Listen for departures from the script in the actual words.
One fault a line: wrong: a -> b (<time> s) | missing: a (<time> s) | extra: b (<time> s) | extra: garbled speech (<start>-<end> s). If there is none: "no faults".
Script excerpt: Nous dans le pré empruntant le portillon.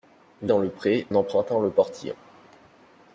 no faults